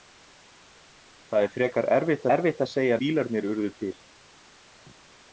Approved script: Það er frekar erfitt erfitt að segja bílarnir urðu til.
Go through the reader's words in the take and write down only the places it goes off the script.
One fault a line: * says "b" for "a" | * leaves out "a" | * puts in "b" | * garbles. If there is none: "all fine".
all fine